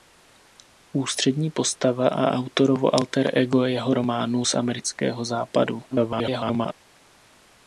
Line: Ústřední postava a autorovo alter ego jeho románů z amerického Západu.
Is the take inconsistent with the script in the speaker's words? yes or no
yes